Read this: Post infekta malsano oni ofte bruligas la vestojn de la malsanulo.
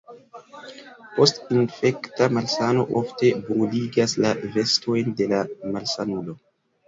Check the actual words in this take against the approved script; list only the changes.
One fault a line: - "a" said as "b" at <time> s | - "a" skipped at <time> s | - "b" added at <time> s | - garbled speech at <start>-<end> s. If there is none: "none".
- "oni" skipped at 2.9 s